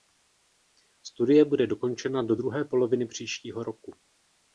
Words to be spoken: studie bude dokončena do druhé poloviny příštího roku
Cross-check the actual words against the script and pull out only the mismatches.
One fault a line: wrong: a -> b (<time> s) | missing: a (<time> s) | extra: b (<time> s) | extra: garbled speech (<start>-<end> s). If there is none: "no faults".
no faults